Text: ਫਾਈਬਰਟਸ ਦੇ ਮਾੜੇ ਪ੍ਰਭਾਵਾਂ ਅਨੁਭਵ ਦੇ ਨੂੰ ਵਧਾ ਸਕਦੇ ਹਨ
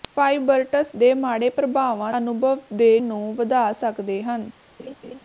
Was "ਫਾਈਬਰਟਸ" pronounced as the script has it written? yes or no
yes